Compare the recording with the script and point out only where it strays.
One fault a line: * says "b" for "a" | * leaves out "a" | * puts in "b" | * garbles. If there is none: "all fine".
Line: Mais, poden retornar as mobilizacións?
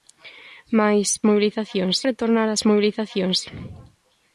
* says "mobilizacións" for "poden"